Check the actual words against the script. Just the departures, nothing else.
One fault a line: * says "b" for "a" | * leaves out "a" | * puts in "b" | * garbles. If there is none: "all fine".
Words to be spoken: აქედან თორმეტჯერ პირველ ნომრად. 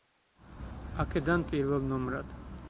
* leaves out "თორმეტჯერ"